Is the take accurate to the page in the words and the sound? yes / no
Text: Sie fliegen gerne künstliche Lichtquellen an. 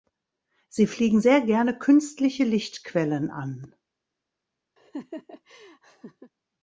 no